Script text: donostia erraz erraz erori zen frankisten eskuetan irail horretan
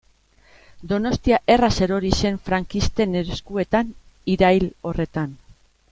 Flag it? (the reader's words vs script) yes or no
yes